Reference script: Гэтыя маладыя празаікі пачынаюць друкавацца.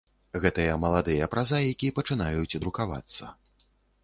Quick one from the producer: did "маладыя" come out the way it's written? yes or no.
yes